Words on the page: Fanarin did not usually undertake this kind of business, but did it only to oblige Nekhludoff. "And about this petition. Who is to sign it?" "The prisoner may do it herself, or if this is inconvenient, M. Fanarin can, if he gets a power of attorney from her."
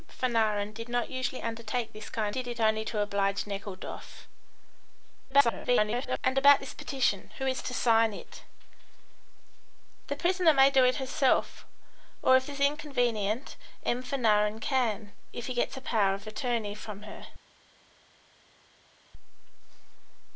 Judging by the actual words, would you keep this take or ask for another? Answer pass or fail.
fail